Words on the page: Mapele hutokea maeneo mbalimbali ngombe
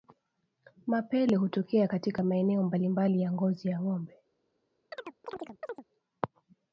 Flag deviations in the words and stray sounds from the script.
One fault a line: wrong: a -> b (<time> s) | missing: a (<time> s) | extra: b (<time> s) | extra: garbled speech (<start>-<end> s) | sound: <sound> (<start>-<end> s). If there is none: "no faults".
extra: katika (1.9 s)
extra: ya ngozi ya (3.2 s)
sound: chirp (4.9-5.8 s)